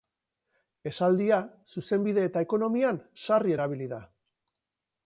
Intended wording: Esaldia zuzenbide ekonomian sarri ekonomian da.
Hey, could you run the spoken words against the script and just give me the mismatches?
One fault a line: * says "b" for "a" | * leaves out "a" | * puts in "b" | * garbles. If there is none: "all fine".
* puts in "eta"
* says "erabili" for "ekonomian"